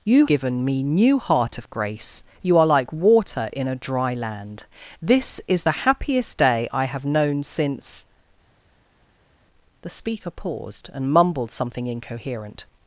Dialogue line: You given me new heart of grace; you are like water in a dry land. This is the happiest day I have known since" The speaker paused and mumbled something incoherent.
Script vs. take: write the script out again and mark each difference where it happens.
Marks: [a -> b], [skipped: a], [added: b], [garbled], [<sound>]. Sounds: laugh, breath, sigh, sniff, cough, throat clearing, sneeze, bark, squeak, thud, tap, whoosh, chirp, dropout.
You given me new heart of grace; you are like water in a dry land. This is the happiest day I have known since" The speaker paused and mumbled something incoherent.